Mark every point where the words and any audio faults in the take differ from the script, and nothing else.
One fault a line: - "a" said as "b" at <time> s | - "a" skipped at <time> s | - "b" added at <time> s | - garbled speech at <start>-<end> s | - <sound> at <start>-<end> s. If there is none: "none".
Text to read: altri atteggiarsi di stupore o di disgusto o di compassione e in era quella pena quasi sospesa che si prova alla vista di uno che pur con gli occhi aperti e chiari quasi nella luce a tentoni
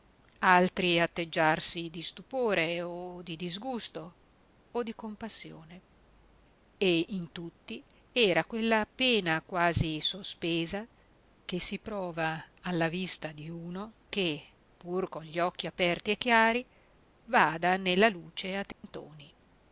- "tutti" added at 7.3 s
- "quasi" said as "vada" at 17.3 s
- dropout at 18.7-18.8 s